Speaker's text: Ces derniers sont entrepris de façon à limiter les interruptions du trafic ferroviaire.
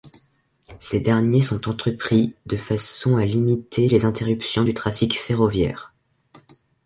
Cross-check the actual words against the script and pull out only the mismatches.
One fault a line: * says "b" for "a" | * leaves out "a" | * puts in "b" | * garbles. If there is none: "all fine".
all fine